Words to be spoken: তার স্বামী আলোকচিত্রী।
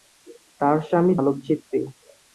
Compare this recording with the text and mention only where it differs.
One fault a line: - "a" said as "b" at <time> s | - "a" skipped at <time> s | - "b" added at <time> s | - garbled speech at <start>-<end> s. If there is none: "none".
none